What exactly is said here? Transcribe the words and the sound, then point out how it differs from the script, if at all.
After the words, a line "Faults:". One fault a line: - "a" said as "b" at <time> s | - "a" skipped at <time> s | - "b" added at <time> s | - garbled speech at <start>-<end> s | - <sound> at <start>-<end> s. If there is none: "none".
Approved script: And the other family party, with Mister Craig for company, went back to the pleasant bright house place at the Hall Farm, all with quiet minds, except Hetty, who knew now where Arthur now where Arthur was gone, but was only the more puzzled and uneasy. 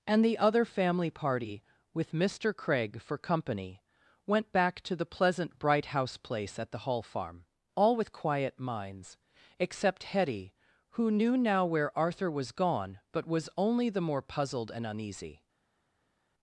And the other family party, with Mister Craig for company, went back to the pleasant bright house place at the Hall Farm, all with quiet minds, except Hetty, who knew now where Arthur was gone, but was only the more puzzled and uneasy.
Faults:
- "now where Arthur" skipped at 12.3 s